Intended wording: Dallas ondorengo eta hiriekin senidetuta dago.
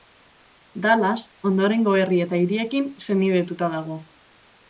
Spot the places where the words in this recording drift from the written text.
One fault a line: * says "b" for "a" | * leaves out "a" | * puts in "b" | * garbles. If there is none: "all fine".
* puts in "herri"